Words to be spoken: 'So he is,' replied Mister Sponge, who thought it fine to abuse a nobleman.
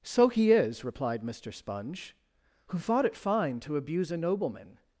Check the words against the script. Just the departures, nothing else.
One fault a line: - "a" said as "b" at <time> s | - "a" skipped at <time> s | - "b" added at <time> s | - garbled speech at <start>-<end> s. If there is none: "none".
none